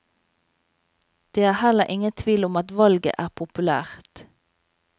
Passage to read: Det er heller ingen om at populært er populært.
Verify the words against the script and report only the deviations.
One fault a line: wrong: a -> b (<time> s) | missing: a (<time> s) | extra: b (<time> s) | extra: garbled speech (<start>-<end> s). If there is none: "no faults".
extra: tvil (2.1 s)
wrong: populært -> valget (2.8 s)